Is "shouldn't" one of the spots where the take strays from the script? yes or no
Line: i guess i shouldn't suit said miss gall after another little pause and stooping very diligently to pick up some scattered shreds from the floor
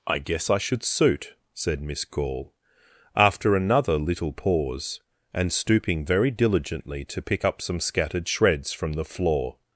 yes